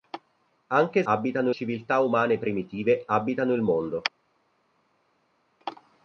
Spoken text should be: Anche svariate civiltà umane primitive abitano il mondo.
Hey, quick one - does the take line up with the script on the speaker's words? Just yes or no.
no